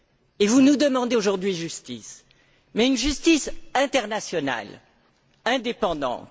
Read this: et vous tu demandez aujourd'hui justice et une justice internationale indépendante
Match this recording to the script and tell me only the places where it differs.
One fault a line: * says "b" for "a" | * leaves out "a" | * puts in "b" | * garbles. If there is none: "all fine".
* says "nous" for "tu"
* says "mais" for "et"